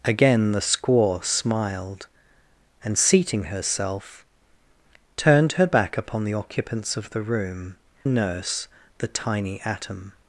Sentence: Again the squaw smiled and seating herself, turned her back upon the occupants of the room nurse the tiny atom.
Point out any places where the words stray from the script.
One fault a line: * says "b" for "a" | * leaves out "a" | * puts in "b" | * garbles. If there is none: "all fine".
all fine